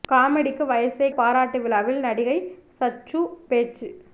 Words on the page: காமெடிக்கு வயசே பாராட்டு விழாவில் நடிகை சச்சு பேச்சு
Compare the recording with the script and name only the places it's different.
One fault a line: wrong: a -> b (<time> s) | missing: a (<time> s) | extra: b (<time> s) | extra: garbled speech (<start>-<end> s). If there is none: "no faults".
no faults